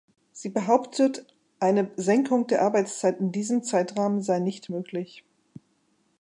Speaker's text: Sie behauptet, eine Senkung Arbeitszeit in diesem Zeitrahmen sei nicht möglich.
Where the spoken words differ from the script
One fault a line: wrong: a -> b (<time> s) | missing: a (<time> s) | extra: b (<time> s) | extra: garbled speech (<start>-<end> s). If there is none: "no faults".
extra: der (2.5 s)